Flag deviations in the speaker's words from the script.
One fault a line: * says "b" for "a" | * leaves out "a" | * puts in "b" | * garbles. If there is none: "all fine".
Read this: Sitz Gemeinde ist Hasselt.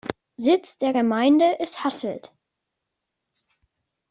* puts in "der"